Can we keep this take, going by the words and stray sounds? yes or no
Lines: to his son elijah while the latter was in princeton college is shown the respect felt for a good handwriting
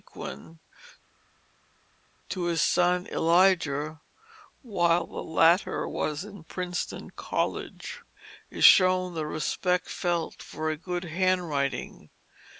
yes